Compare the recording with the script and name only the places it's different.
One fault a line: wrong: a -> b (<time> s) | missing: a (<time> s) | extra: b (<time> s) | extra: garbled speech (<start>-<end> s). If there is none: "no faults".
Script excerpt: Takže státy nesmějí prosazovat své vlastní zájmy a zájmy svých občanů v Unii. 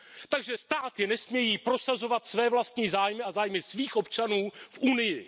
no faults